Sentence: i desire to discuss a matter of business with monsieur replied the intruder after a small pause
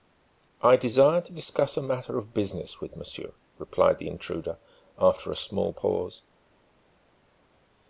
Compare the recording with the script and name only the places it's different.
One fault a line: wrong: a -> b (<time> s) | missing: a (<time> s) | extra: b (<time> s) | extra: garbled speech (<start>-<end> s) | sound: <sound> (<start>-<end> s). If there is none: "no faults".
no faults